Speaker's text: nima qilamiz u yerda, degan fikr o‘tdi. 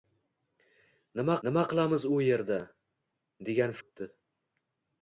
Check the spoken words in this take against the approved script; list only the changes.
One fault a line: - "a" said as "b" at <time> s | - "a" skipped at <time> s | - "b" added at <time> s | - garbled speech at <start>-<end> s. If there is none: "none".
- "nima" added at 1.5 s
- "fikr" skipped at 3.8 s